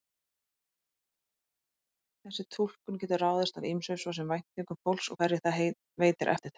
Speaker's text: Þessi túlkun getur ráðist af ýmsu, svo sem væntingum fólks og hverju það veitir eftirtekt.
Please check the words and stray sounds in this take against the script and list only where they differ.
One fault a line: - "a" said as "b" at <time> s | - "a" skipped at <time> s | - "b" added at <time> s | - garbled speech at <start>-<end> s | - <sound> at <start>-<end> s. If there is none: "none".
none